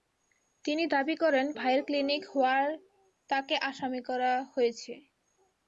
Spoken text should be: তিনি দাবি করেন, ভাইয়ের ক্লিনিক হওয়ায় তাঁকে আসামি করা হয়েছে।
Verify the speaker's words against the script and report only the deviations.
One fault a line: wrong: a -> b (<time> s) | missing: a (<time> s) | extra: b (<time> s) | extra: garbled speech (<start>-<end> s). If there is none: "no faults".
no faults